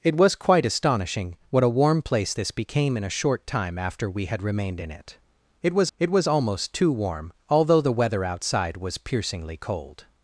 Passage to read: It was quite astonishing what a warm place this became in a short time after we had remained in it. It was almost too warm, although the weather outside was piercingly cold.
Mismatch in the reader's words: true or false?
true